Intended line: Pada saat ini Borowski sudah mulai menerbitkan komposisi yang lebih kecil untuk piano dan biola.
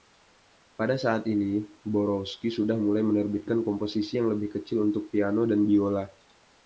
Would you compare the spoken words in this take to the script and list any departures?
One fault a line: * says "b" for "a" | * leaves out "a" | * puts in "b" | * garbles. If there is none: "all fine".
all fine